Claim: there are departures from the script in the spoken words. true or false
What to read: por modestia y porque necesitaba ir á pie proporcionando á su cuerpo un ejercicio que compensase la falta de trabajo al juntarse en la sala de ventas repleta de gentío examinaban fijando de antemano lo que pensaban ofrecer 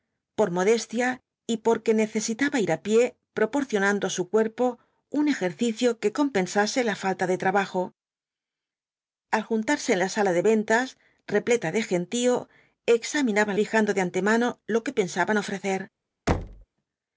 false